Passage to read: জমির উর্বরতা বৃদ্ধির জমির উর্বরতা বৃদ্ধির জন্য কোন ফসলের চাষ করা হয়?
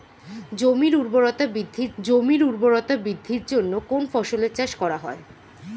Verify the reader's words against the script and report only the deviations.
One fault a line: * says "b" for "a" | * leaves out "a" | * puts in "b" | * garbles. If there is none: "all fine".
all fine